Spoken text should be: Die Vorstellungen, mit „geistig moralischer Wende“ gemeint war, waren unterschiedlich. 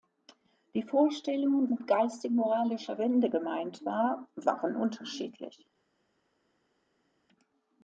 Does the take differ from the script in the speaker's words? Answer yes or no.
no